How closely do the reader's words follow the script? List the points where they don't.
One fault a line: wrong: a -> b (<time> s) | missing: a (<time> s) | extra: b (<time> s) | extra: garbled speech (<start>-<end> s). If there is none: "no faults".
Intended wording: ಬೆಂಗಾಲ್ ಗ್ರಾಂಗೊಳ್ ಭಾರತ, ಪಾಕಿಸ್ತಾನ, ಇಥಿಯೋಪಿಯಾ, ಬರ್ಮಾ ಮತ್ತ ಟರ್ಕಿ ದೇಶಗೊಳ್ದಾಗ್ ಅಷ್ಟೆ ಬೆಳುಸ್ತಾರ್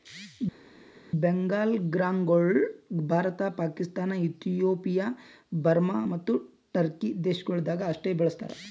no faults